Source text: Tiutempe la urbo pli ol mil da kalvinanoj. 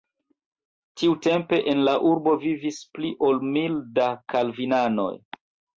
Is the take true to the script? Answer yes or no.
no